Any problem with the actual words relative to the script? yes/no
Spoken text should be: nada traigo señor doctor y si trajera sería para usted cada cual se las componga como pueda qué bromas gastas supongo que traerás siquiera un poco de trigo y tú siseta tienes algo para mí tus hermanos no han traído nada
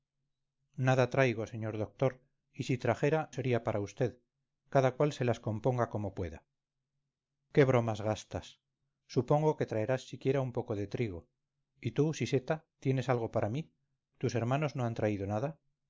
no